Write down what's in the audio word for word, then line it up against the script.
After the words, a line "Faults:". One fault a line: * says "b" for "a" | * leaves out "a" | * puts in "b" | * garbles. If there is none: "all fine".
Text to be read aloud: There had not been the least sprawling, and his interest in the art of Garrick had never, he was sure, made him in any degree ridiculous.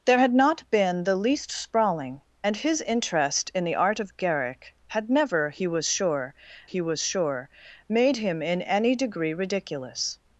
There had not been the least sprawling, and his interest in the art of Garrick had never, he was sure he was sure, made him in any degree ridiculous.
Faults:
* puts in "he was sure"